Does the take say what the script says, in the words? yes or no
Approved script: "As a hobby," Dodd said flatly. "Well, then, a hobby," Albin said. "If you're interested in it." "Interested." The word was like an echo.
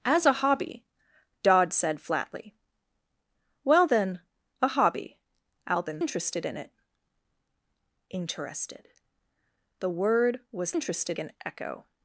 no